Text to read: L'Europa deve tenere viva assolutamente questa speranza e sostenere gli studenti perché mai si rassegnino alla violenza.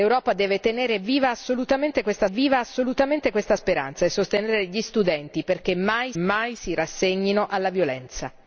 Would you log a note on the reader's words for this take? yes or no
yes